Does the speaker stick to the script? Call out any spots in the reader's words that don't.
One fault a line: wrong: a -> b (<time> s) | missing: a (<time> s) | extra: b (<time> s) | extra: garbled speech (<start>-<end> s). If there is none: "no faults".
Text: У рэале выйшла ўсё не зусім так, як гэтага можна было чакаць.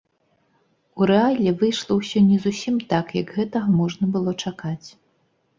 no faults